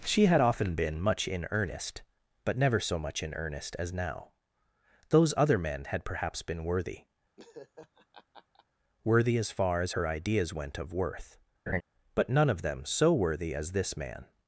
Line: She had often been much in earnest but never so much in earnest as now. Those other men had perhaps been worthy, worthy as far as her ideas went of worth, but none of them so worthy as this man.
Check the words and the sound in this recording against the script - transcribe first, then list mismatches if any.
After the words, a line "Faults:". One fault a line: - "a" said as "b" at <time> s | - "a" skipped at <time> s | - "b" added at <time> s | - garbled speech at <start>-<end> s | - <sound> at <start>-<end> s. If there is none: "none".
She had often been much in earnest but never so much in earnest as now. Those other men had perhaps been worthy, worthy as far as her ideas went of worth, but none of them so worthy as this man.
Faults:
- laugh at 7.4-8.7 s
- laugh at 11.7-11.8 s